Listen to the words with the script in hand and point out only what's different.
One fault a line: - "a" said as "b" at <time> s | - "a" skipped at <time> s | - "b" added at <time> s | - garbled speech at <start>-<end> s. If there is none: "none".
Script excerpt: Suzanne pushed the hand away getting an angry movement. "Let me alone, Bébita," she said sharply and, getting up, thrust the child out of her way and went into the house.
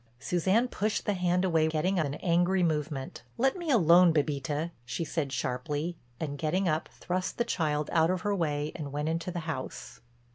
none